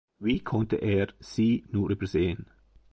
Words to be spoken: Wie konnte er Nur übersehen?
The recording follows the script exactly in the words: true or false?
false